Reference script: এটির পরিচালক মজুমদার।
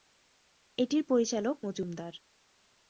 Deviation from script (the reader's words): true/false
false